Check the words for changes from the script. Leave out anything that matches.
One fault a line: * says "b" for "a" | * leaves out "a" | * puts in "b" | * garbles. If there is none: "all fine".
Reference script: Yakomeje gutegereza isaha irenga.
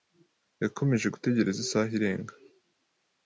all fine